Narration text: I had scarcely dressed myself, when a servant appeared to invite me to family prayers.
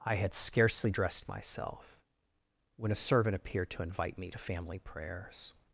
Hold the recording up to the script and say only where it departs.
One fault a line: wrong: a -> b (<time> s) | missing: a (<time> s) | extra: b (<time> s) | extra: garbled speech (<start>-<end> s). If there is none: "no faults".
no faults